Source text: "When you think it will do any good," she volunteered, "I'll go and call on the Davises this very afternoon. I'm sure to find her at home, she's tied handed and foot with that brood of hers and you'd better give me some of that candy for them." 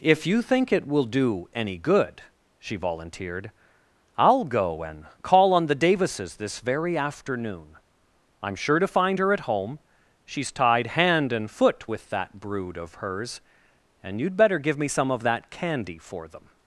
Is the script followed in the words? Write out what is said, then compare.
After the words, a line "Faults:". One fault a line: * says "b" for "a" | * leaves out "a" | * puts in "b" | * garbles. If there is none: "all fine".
"If you think it will do any good," she volunteered, "I'll go and call on the Davises this very afternoon. I'm sure to find her at home, she's tied hand and foot with that brood of hers and you'd better give me some of that candy for them."
Faults:
* says "If" for "When"
* says "hand" for "handed"